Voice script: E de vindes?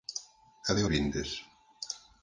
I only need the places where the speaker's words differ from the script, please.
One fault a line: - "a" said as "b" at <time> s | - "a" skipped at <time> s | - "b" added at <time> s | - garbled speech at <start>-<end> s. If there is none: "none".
none